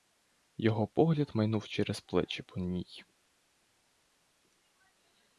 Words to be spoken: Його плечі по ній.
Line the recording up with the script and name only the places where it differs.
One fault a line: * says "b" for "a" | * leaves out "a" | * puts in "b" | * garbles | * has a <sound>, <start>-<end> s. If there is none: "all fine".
* puts in "погляд майнув через"